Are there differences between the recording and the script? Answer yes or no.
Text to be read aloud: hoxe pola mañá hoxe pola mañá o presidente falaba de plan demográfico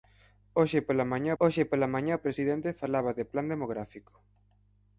no